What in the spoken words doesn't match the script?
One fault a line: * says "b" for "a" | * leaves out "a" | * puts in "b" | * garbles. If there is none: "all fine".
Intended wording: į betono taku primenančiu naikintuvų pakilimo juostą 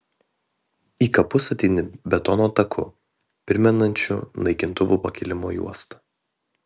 * puts in "kapus ateini"